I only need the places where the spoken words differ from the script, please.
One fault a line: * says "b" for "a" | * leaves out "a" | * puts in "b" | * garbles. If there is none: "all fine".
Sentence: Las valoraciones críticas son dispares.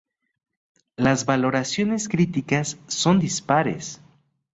all fine